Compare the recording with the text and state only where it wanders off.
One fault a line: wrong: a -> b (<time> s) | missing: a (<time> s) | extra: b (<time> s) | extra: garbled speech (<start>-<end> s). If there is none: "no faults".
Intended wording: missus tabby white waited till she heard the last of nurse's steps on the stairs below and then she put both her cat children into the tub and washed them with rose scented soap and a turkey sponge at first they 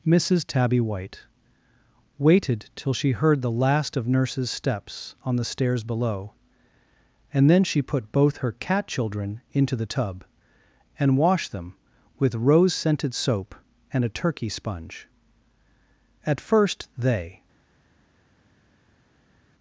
no faults